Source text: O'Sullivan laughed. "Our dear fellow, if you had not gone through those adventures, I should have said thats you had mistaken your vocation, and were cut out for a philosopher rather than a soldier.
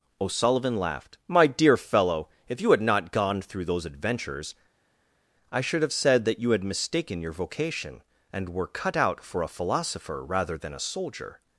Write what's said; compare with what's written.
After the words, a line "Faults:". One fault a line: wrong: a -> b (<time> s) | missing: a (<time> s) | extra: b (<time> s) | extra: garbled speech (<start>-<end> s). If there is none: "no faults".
O'Sullivan laughed. "My dear fellow, if you had not gone through those adventures, I should have said that you had mistaken your vocation, and were cut out for a philosopher rather than a soldier.
Faults:
wrong: Our -> My (1.3 s)
wrong: thats -> that (6.3 s)